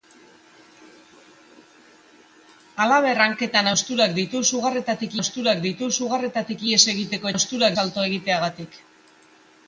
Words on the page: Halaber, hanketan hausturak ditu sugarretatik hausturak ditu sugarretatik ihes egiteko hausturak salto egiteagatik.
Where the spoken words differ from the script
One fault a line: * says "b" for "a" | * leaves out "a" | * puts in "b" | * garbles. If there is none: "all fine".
all fine